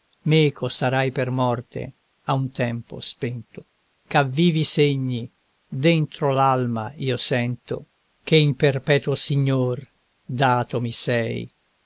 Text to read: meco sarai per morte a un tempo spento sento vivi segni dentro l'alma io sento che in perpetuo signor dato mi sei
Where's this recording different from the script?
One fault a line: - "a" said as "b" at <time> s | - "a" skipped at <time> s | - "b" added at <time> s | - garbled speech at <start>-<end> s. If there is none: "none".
- "sento" said as "ch'a" at 4.1 s